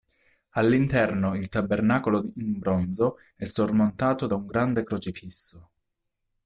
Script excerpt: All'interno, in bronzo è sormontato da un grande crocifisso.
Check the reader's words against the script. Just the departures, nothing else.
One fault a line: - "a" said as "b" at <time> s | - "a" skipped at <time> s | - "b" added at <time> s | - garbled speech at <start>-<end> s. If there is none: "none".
- "il tabernacolo" added at 1.4 s